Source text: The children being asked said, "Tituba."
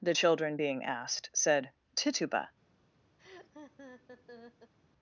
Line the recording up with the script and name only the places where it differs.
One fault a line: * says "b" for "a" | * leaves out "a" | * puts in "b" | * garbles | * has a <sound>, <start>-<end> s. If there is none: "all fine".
* has a laugh, 3.2-4.7 s